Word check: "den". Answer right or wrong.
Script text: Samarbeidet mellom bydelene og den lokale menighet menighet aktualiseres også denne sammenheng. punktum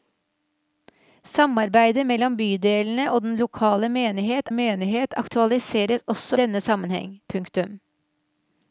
right